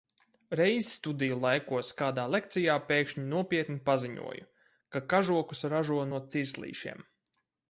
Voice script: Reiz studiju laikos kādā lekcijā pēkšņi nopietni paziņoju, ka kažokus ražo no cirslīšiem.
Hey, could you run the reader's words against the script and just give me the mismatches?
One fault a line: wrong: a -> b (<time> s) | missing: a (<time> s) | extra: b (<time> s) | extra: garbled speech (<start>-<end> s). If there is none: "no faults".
no faults